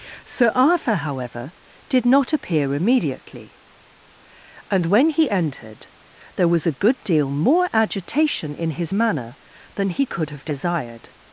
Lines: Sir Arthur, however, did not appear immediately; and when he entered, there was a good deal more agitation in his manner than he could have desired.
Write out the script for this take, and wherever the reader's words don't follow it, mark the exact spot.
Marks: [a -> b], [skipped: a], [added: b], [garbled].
Sir Arthur, however, did not appear immediately; and when he entered, there was a good deal more agitation in his manner than he could have desired.